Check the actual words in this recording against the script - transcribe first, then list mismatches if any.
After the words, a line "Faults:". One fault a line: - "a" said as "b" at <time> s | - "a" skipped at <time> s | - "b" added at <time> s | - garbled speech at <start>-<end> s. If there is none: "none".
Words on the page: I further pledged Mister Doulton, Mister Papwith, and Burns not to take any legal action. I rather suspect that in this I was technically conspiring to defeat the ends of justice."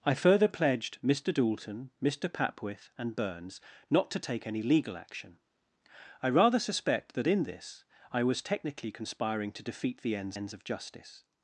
I further pledged Mister Doulton, Mister Papwith, and Burns not to take any legal action. I rather suspect that in this I was technically conspiring to defeat the ends ends of justice."
Faults:
- "ends" added at 10.3 s